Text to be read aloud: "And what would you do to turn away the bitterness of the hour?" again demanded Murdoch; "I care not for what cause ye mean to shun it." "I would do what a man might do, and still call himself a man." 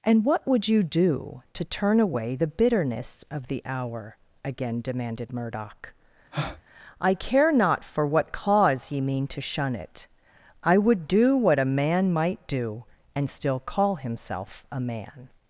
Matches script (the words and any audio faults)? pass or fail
fail